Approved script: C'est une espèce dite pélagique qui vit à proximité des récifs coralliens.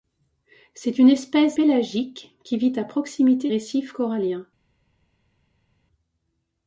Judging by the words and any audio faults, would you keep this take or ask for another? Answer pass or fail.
fail